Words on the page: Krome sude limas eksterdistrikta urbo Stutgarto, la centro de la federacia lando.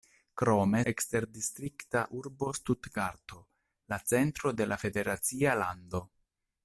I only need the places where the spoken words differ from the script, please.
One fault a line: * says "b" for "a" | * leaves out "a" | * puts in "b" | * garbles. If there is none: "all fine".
* leaves out "sude limas"